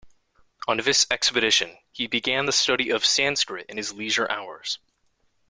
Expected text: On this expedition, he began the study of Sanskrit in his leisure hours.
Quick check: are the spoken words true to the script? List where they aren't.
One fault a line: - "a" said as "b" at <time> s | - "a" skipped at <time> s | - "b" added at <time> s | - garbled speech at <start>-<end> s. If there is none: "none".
none